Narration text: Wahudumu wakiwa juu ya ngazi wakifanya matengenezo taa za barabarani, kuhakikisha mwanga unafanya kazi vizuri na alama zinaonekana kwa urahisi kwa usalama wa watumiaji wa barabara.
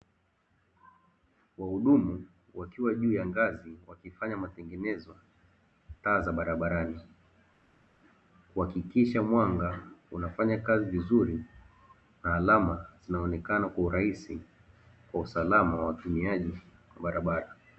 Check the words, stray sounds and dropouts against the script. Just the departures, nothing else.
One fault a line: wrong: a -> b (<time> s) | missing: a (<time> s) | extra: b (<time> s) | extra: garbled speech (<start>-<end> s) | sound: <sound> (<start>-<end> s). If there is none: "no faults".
no faults